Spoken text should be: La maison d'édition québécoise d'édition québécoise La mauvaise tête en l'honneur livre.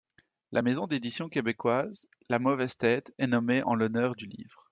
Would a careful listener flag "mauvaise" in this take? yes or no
no